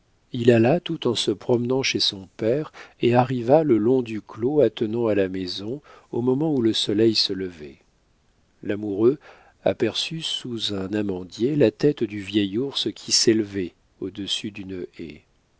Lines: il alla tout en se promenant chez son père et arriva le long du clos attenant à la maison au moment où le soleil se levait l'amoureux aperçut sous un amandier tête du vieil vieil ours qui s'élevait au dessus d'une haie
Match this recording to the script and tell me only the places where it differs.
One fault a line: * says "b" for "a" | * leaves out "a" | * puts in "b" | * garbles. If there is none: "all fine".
* puts in "la"
* leaves out "vieil"